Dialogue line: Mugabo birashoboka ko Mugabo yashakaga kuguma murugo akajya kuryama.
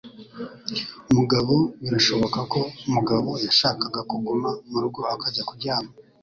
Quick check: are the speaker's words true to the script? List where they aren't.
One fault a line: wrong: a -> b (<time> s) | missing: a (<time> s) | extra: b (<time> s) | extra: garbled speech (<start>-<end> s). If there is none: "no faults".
no faults